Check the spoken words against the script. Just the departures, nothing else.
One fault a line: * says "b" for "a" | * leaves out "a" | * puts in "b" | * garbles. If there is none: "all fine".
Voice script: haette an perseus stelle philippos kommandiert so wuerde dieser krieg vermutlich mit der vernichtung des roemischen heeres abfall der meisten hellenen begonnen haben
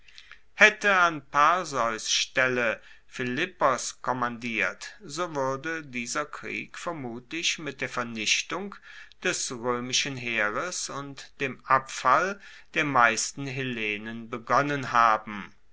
* puts in "und dem"